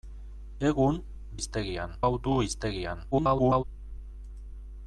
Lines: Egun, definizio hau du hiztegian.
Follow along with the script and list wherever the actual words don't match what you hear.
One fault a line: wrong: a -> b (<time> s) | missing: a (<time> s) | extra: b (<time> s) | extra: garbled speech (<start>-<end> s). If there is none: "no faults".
wrong: definizio -> hiztegian (1.4 s)
extra: garbled speech (3.1-3.6 s)